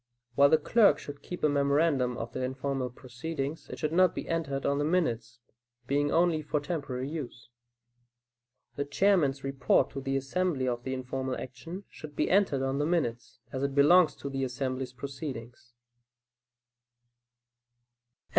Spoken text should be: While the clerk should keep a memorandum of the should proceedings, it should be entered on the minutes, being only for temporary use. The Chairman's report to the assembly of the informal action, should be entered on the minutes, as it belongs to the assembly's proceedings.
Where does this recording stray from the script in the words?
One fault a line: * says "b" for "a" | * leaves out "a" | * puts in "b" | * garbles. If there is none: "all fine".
* says "informal" for "should"
* puts in "not"